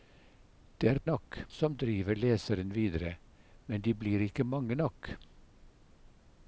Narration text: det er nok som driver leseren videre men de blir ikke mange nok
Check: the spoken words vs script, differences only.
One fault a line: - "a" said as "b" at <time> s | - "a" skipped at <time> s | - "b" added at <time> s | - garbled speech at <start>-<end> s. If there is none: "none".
none